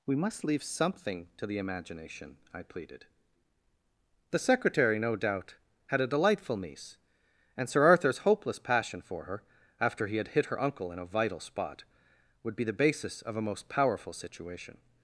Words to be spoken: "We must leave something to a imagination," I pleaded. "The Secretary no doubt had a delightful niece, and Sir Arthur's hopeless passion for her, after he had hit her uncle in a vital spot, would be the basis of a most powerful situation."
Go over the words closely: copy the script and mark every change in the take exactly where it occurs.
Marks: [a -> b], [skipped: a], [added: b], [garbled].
"We must leave something to [a -> the] imagination," I pleaded. "The Secretary no doubt had a delightful niece, and Sir Arthur's hopeless passion for her, after he had hit her uncle in a vital spot, would be the basis of a most powerful situation."